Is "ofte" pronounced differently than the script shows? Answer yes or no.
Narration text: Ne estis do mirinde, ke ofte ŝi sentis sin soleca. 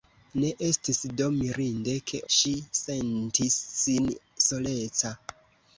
yes